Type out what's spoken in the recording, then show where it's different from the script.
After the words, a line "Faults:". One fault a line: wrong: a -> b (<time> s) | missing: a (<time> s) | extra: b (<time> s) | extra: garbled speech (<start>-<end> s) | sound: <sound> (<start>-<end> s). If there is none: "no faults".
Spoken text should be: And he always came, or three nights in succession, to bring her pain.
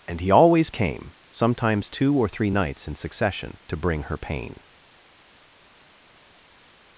And he always came, sometimes two or three nights in succession, to bring her pain.
Faults:
extra: sometimes two (1.3 s)